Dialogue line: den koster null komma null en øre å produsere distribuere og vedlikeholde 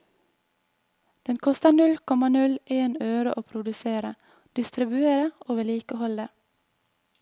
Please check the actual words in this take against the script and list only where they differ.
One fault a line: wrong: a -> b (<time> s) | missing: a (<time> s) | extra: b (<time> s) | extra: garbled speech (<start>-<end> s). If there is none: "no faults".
no faults